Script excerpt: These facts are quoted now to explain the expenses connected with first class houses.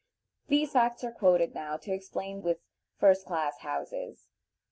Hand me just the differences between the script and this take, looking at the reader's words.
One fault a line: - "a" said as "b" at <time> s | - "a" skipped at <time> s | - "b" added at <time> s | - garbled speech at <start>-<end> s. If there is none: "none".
- "the expenses connected" skipped at 2.4 s